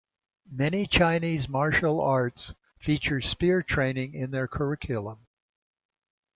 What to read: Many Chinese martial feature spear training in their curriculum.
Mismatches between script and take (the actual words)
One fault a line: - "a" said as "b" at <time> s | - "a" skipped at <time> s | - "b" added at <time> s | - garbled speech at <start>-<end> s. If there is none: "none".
- "arts" added at 2.0 s